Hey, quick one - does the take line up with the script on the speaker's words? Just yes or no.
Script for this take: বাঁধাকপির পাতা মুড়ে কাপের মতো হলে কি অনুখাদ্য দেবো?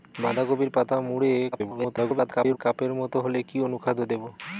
no